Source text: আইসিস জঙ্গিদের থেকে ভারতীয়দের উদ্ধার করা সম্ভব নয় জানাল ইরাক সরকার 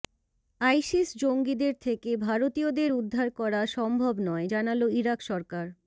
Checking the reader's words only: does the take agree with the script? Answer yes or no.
yes